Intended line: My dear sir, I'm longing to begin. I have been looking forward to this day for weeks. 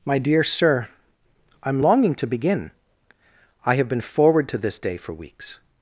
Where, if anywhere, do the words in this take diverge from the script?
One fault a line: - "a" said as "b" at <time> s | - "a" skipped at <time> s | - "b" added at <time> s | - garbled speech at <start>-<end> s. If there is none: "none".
- "looking" skipped at 4.0 s